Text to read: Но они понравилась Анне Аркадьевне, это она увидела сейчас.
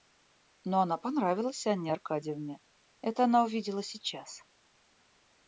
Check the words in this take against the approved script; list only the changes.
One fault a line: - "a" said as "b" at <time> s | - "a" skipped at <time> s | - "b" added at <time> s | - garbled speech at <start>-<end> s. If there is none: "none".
- "они" said as "она" at 0.8 s